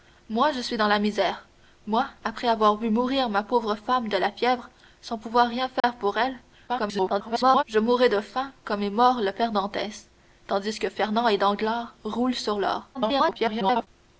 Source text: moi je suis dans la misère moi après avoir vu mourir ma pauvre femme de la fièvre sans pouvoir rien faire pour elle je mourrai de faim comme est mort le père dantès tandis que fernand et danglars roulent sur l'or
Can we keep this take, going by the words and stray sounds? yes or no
no